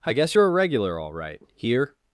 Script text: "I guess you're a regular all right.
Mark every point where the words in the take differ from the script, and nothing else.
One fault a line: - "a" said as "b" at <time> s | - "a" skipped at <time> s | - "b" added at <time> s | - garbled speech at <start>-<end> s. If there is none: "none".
- "Here" added at 1.6 s